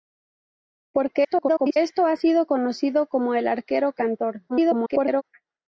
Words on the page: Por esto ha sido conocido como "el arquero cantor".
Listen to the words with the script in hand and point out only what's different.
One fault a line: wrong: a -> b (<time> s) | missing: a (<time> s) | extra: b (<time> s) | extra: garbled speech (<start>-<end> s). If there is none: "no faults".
extra: garbled speech (1.2-1.8 s)
extra: garbled speech (4.5-5.2 s)